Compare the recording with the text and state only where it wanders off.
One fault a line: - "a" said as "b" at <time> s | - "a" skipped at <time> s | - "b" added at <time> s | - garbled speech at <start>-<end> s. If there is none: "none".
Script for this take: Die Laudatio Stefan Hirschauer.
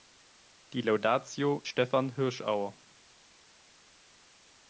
none